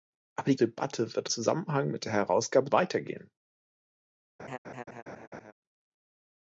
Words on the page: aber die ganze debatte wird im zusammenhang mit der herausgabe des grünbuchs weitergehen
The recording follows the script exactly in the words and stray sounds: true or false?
false